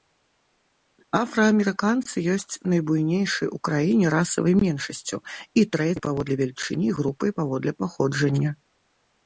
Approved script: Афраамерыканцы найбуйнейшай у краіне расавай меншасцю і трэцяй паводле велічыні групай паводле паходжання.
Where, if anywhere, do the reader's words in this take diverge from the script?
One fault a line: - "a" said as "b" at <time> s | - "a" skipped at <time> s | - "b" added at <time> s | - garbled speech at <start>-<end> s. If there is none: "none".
- "ёсць" added at 2.4 s